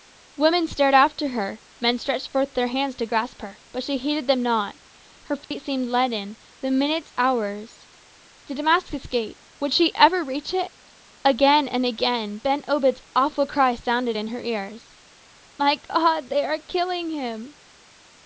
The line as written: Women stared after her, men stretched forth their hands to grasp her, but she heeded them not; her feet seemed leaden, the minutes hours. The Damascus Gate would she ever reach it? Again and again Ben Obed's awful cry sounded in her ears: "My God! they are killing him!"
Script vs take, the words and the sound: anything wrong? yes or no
yes